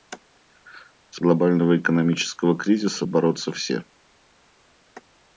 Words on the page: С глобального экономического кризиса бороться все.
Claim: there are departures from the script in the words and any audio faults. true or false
false